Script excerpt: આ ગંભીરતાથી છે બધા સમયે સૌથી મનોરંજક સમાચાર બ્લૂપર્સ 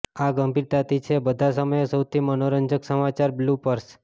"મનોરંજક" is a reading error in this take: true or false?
false